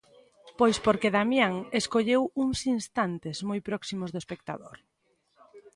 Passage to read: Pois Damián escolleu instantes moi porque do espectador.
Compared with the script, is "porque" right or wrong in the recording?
wrong